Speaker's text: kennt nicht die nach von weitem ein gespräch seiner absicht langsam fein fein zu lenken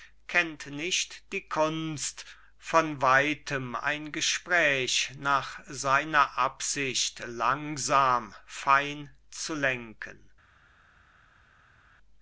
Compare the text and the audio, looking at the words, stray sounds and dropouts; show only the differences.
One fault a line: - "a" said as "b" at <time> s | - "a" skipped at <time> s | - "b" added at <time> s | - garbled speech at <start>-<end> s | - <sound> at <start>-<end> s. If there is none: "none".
- "nach" said as "kunst" at 1.5 s
- "nach" added at 5.2 s
- "fein" skipped at 9.1 s